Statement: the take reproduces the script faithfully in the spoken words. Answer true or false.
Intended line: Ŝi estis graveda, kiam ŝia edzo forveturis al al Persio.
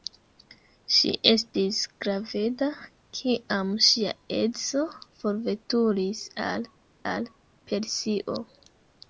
true